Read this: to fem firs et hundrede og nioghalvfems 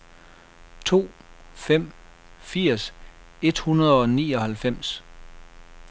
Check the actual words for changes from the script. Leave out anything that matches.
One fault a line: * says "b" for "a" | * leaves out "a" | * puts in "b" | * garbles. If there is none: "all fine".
all fine